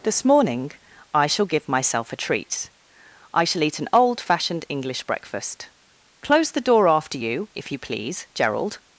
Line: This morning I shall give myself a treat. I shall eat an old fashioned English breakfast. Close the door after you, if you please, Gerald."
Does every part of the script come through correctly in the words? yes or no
yes